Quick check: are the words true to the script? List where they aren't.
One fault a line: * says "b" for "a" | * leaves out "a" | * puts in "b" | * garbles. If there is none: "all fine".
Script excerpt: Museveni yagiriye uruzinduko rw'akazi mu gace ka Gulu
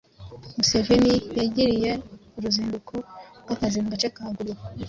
all fine